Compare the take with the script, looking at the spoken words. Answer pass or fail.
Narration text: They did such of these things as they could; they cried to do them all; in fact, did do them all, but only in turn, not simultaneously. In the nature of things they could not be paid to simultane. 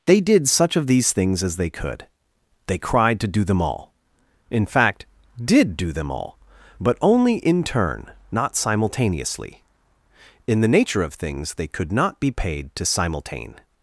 pass